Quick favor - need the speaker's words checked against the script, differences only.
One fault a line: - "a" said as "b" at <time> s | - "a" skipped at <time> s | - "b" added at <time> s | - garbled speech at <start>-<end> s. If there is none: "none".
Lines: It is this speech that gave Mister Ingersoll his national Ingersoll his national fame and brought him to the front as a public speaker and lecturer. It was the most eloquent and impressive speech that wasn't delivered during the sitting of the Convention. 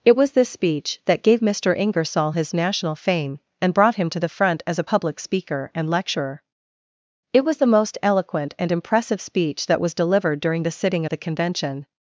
- "is" said as "was" at 0.1 s
- "Ingersoll his national" skipped at 3.0 s
- "wasn't" said as "was" at 9.8 s